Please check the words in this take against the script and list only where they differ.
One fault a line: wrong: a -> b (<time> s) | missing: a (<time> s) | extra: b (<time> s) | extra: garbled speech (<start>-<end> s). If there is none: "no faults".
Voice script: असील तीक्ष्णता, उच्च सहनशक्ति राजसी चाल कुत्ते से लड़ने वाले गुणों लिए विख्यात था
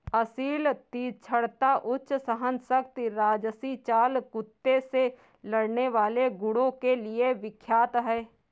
extra: के (6.7 s)
wrong: था -> है (8.0 s)